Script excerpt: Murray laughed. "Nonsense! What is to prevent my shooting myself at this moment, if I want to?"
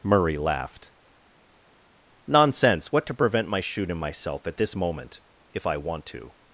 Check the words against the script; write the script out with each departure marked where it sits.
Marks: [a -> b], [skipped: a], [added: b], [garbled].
Murray laughed. "Nonsense! What [skipped: is] to prevent my shooting myself at this moment, if I want to?"